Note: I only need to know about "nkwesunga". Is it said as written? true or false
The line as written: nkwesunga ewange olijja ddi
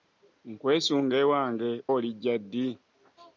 true